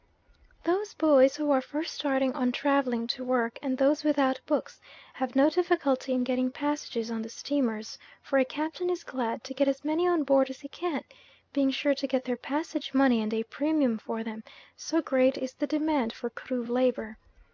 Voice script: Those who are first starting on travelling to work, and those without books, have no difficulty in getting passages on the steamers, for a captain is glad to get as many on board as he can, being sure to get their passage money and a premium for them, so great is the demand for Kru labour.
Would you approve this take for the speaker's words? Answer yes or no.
no